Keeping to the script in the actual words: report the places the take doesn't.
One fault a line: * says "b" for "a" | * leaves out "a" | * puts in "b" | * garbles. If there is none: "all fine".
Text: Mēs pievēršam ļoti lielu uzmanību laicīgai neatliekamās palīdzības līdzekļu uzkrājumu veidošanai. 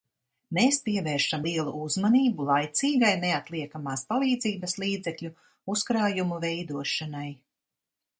* leaves out "ļoti"